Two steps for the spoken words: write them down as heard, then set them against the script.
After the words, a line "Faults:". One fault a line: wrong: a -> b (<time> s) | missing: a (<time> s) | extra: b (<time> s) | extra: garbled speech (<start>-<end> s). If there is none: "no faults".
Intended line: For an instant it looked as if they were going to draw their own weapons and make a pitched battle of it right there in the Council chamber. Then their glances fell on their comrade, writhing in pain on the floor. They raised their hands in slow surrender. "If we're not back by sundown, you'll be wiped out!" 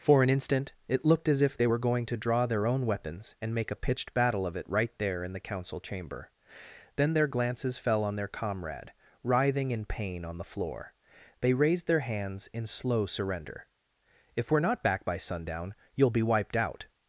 For an instant it looked as if they were going to draw their own weapons and make a pitched battle of it right there in the Council chamber. Then their glances fell on their comrade, writhing in pain on the floor. They raised their hands in slow surrender. "If we're not back by sundown, you'll be wiped out!"
Faults:
no faults